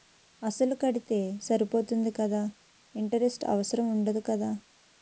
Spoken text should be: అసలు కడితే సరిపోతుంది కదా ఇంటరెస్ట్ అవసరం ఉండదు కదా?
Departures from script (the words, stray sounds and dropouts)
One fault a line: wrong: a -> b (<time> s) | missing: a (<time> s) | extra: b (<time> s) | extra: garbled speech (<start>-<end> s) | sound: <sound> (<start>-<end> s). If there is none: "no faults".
no faults